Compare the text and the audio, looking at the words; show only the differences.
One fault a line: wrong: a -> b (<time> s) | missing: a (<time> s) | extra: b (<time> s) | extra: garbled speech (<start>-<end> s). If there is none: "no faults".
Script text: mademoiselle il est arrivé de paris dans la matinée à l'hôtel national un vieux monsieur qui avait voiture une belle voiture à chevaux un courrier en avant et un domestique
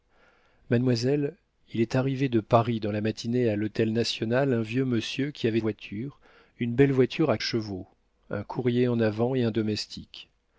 no faults